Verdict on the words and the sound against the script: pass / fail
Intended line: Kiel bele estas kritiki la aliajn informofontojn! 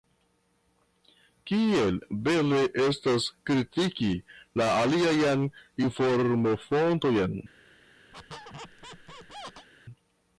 fail